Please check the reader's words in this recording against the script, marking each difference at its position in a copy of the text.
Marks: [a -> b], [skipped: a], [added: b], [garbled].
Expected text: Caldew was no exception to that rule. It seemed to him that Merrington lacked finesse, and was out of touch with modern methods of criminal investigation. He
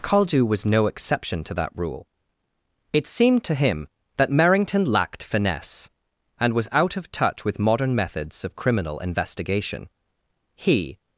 Caldew was no exception to that rule. It seemed to him that Merrington lacked finesse, and was out of touch with modern methods of criminal investigation. He